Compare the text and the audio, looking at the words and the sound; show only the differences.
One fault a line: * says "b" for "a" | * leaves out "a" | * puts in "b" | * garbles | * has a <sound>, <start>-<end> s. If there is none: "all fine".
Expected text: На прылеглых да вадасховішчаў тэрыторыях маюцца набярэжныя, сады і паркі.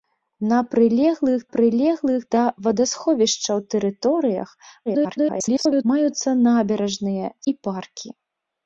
* puts in "прылеглых"
* garbles
* leaves out "сады"